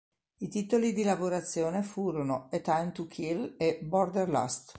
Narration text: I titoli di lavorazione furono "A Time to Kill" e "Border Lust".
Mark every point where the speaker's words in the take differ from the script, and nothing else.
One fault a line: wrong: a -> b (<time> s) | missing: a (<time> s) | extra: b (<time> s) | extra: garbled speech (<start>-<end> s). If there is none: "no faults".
no faults